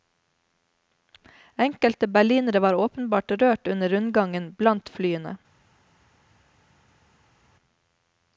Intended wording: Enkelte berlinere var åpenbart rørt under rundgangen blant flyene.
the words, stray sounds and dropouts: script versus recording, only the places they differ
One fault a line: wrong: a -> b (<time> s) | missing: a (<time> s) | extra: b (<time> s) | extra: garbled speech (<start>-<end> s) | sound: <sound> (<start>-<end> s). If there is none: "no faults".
no faults